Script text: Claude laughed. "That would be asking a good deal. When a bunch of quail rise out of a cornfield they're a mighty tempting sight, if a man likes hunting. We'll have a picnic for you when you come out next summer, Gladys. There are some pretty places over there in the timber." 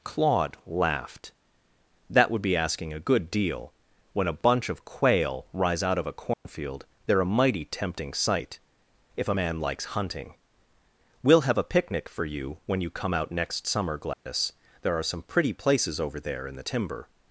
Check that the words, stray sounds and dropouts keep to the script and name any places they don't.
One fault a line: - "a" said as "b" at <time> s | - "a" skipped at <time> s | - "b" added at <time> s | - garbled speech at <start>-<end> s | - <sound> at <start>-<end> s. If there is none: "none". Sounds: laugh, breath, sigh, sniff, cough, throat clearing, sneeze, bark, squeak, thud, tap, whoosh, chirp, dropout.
- dropout at 6.3-6.5 s
- dropout at 14.1-14.3 s